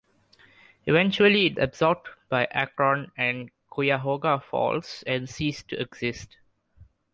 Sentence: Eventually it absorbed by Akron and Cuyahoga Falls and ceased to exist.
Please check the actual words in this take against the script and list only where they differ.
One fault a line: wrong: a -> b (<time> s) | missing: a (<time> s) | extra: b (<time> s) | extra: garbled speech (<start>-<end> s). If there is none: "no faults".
no faults